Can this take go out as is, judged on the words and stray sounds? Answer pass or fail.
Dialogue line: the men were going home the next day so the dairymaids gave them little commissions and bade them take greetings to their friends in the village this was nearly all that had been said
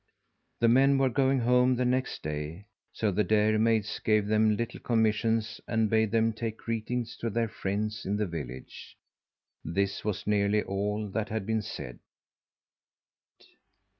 pass